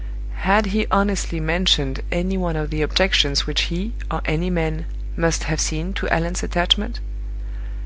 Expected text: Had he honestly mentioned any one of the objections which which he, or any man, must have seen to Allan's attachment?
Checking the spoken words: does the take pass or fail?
fail